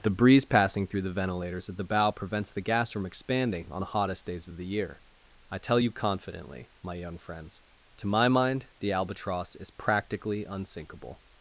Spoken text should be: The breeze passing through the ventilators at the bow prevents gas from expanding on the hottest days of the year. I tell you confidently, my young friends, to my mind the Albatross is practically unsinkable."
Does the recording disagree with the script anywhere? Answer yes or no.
yes